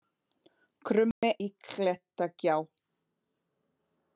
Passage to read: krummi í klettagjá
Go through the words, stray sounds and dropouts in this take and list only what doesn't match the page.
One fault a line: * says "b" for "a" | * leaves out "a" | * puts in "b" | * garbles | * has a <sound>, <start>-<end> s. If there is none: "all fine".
* has a dropout, 1.1-1.2 s